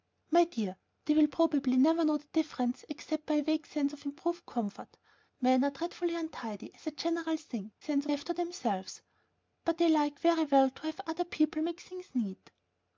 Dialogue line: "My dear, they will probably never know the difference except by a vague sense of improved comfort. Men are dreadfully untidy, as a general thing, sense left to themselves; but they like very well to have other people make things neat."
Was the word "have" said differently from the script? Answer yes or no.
no